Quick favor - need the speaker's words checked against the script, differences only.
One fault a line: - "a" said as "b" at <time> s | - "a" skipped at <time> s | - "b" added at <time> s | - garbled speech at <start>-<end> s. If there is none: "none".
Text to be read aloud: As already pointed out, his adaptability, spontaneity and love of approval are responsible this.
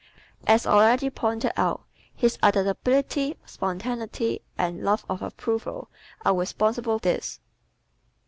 none